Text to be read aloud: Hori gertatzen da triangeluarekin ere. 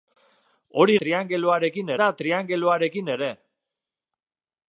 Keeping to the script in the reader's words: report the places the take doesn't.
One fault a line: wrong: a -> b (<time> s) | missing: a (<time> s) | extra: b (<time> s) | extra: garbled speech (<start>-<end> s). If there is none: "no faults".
wrong: gertatzen -> triangeluarekin (1.0 s)